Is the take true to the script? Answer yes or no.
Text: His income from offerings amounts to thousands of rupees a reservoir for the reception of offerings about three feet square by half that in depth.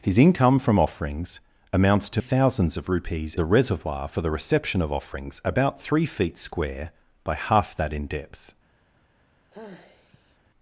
yes